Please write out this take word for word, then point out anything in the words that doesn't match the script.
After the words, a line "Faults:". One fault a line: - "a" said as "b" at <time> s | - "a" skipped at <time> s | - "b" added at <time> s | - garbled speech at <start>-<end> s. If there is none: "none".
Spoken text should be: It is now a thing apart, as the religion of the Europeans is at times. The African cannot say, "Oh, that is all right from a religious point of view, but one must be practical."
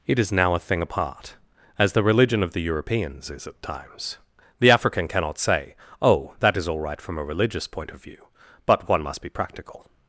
It is now a thing apart, as the religion of the Europeans is at times. The African cannot say, "Oh, that is all right from a religious point of view, but one must be practical."
Faults:
none